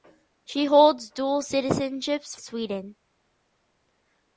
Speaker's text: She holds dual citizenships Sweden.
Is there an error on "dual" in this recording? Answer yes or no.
no